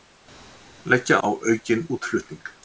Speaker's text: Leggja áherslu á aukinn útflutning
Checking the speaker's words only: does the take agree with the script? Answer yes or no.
no